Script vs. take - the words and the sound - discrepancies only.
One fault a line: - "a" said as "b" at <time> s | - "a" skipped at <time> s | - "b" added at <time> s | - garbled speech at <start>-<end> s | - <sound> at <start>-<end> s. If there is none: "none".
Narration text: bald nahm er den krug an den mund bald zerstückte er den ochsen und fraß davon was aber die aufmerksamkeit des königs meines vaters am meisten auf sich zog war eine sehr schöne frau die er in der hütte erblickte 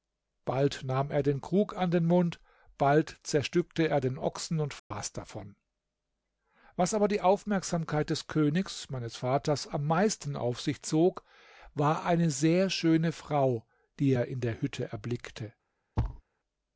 - dropout at 4.8-4.9 s
- thud at 16.0-16.2 s